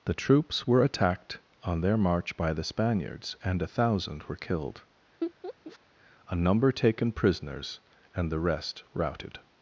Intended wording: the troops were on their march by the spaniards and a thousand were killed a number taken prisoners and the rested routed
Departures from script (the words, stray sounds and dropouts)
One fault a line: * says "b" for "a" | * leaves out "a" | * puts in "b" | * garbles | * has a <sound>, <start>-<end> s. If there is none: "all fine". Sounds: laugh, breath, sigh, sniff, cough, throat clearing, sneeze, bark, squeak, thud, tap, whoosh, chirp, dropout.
* puts in "attacked"
* has a laugh, 5.2-5.8 s
* says "rest" for "rested"